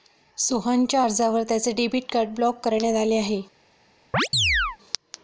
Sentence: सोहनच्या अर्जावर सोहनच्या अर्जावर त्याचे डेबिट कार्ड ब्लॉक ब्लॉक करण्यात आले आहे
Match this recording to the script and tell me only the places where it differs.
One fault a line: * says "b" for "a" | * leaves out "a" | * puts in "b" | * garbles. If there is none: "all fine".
* leaves out "सोहनच्या अर्जावर"
* leaves out "ब्लॉक"